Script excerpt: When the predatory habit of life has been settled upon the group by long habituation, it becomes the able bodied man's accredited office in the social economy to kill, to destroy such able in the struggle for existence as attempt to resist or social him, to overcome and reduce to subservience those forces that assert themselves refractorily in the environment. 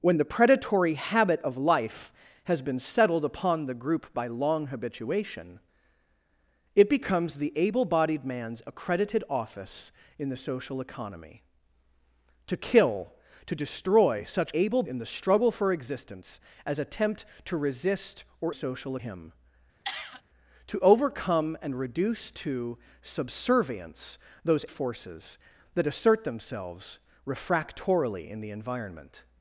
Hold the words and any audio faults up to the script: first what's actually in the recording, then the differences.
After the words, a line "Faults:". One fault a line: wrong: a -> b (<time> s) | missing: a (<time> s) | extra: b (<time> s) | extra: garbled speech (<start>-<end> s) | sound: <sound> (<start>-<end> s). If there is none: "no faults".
When the predatory habit of life has been settled upon the group by long habituation, it becomes the able bodied man's accredited office in the social economy to kill, to destroy such able in the struggle for existence as attempt to resist or social him, to overcome and reduce to subservience those forces that assert themselves refractorily in the environment.
Faults:
sound: cough (19.8-20.2 s)